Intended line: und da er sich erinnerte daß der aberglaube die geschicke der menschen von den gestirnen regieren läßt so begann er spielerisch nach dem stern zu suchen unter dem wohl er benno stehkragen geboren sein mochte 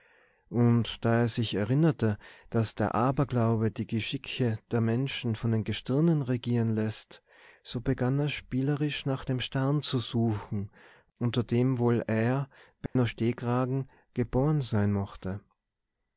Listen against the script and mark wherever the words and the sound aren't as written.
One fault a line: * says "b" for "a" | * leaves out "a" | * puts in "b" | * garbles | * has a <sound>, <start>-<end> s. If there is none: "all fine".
* has a dropout, 12.9-13.0 s